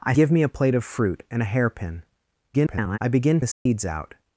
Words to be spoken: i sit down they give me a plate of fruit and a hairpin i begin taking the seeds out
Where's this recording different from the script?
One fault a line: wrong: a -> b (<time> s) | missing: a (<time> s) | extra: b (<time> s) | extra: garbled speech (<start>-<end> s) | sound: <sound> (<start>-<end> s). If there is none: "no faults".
missing: sit down they (0.1 s)
extra: garbled speech (2.5-3.0 s)
missing: taking (3.4 s)
sound: dropout (3.5-3.7 s)